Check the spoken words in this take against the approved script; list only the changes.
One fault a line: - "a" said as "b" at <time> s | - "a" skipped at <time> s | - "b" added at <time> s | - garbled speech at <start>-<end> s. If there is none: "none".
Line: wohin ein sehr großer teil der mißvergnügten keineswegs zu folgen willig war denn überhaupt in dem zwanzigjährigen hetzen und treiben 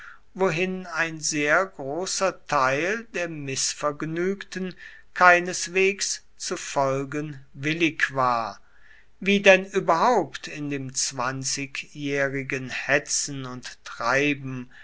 - "wie" added at 9.2 s